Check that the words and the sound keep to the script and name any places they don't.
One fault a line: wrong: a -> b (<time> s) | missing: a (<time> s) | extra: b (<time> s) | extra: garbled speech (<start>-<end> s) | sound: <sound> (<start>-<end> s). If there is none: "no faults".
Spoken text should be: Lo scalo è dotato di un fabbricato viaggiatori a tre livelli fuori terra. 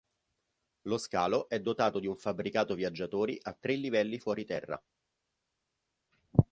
no faults